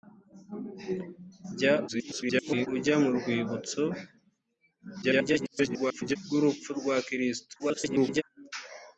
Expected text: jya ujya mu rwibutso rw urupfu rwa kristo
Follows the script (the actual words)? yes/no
no